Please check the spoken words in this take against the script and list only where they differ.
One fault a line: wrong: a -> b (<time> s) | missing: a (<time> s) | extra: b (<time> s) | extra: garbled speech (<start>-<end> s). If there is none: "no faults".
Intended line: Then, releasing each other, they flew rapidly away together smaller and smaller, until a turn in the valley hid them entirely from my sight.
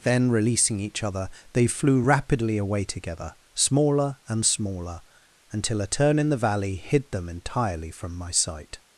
no faults